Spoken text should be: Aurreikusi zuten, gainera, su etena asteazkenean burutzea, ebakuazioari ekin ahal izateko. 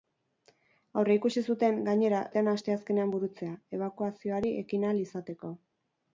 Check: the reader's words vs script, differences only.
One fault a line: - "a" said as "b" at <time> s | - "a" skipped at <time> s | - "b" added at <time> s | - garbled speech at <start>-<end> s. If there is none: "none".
- "su" skipped at 2.2 s